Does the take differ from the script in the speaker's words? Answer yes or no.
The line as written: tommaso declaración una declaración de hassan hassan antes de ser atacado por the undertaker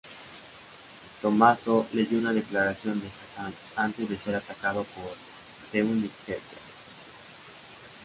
yes